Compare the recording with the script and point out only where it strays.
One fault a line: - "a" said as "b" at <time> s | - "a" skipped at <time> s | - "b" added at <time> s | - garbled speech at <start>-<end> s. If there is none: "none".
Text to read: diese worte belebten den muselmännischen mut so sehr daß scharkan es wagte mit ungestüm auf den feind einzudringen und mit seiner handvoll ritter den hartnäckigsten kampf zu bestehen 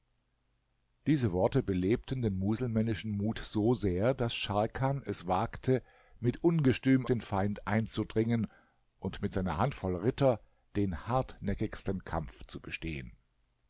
- "auf" skipped at 7.0 s